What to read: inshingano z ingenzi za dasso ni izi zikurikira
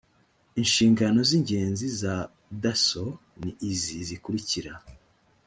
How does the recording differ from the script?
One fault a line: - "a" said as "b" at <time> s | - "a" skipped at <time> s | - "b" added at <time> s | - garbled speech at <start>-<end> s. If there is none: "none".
none